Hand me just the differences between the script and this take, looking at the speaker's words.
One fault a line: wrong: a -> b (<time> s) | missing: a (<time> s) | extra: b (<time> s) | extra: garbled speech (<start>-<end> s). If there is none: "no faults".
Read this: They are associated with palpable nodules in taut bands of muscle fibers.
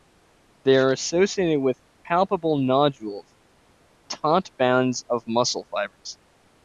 missing: in (3.4 s)